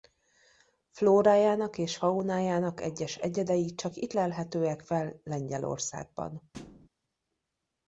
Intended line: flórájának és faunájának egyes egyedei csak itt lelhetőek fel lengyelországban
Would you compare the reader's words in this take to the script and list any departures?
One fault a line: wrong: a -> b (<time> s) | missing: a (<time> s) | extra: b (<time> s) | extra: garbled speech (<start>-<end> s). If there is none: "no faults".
no faults